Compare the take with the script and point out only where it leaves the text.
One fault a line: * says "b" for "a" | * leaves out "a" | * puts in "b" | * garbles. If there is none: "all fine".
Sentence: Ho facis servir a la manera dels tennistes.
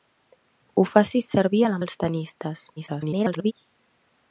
* leaves out "manera"
* garbles